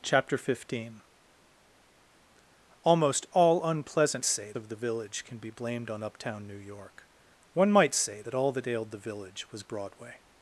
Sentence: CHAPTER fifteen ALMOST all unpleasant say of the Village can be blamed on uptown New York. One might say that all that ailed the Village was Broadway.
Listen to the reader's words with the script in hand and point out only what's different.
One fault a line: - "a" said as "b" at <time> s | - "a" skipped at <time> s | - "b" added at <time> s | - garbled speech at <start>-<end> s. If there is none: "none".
none